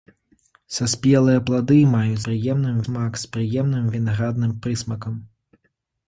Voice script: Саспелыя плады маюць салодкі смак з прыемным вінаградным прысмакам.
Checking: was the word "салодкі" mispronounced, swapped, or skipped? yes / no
yes